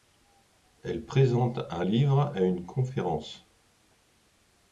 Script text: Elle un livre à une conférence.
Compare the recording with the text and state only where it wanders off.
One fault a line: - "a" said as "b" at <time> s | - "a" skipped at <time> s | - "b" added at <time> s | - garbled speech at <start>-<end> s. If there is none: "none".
- "présente" added at 1.1 s